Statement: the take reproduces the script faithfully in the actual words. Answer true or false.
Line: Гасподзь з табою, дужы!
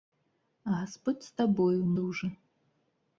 true